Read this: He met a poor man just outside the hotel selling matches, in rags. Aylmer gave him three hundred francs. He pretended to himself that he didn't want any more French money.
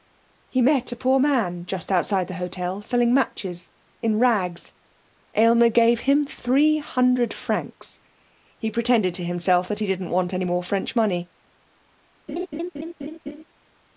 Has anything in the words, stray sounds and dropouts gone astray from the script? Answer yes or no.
yes